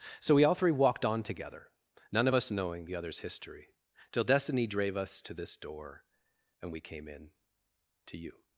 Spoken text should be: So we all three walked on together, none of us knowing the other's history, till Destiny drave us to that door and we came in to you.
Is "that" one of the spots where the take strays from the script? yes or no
yes